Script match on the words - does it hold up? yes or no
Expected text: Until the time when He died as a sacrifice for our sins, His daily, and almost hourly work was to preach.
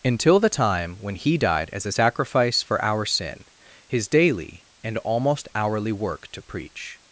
no